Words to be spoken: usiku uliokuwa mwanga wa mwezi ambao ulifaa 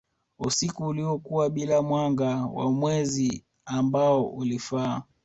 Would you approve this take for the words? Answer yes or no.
no